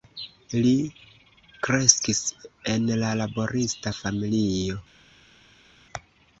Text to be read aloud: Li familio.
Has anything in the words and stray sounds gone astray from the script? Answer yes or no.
yes